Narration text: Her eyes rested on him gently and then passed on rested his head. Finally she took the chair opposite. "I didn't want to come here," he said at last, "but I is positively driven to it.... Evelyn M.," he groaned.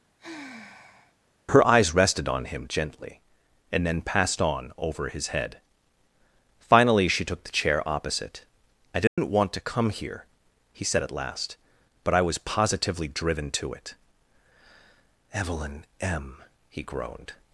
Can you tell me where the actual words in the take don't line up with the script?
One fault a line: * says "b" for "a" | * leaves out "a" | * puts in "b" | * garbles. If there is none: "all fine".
* says "over" for "rested"
* says "was" for "is"